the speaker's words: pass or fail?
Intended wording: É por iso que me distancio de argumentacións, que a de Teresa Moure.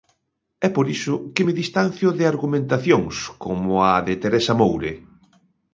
fail